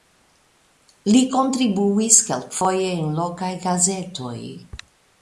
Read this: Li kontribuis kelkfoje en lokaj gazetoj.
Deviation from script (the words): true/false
false